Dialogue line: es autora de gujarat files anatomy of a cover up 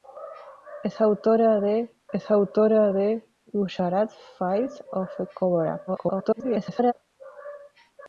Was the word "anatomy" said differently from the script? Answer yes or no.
yes